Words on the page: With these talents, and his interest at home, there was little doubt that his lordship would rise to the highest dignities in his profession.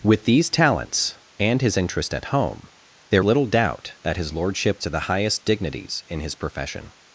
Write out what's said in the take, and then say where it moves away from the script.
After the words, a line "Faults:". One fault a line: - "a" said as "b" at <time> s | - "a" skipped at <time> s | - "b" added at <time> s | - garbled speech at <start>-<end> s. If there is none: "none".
With these talents, and his interest at home, there little doubt that his lordship to the highest dignities in his profession.
Faults:
- "was" skipped at 3.2 s
- "would rise" skipped at 4.8 s